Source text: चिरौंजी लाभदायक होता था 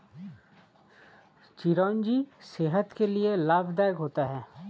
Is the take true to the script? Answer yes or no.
no